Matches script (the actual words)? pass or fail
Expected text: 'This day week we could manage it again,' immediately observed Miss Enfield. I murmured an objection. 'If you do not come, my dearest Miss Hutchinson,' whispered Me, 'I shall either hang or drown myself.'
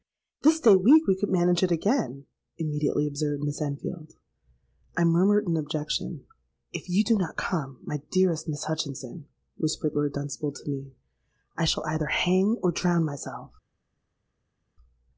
fail